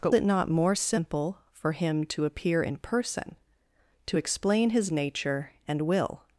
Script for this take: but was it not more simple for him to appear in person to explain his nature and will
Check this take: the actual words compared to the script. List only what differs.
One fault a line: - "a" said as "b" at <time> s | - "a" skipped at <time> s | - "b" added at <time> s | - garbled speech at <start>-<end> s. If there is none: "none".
- "was" skipped at 0.1 s